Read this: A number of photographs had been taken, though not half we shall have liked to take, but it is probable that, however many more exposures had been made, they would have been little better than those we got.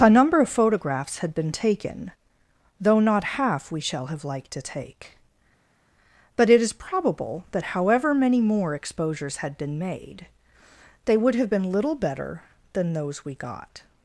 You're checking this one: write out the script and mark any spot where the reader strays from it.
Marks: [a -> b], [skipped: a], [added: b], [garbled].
A number of photographs had been taken, though not half we shall have liked to take, but it is probable that, however many more exposures had been made, they would have been little better than those we got.